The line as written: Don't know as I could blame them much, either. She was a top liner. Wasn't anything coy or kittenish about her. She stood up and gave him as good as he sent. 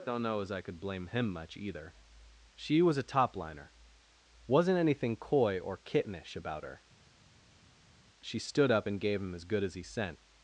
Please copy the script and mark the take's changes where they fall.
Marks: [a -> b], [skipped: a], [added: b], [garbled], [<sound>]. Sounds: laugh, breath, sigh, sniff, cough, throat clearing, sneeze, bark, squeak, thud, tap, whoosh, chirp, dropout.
Don't know as I could blame [them -> him] much, either. She was a top liner. Wasn't anything coy or kittenish about her. She stood up and gave him as good as he sent.